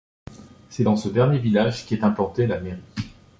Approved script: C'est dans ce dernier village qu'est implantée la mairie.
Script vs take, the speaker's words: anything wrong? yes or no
no